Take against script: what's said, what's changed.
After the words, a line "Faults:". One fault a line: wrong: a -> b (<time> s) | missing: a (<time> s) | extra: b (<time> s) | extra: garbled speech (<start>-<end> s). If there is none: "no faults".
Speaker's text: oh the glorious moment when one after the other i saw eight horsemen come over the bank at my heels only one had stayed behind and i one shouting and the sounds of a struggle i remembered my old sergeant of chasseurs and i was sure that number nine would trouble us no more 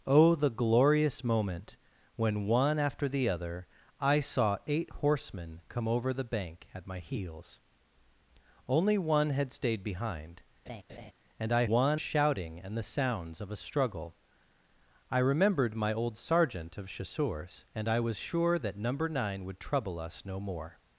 oh the glorious moment when one after the other i saw eight horsemen come over the bank at my heels only one had stayed behind and i one shouting and the sounds of a struggle i remembered my old sergeant of chasseurs and i was sure that number nine would trouble us no more
Faults:
no faults